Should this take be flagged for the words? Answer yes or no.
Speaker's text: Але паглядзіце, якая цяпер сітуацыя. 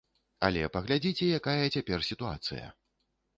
no